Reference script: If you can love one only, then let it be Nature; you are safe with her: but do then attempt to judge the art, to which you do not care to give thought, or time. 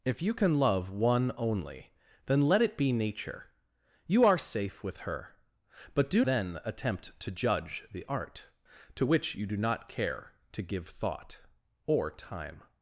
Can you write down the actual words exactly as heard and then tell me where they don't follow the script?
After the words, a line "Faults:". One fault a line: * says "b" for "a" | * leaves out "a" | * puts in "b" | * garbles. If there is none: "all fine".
If you can love one only, then let it be Nature; you are safe with her: but do then attempt to judge the art, to which you do not care to give thought, or time.
Faults:
all fine